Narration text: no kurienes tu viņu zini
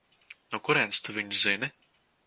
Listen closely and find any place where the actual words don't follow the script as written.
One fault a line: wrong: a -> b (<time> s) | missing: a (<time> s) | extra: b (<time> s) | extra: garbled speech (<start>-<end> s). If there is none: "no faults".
no faults